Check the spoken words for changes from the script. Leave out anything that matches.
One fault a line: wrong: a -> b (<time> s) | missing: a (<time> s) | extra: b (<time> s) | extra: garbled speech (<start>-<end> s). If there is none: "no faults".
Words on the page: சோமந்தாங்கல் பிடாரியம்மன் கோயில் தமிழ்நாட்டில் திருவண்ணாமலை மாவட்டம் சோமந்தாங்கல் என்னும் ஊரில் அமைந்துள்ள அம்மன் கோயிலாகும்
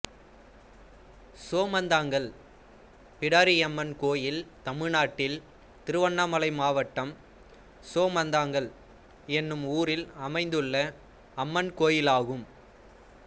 no faults